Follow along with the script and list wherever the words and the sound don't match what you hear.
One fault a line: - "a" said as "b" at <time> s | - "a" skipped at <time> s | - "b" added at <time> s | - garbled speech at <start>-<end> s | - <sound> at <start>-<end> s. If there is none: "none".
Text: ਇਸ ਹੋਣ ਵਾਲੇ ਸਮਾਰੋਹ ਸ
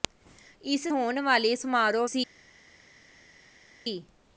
none